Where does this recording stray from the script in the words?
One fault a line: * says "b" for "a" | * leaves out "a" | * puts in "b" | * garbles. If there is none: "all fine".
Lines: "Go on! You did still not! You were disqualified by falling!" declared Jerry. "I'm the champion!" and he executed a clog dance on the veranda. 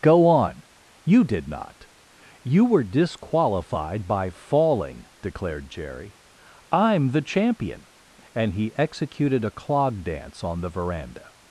* leaves out "still"